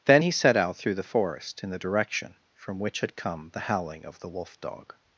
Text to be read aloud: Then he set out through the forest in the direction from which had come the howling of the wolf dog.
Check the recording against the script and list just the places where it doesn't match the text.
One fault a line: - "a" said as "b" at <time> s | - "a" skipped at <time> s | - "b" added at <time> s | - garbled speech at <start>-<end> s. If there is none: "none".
none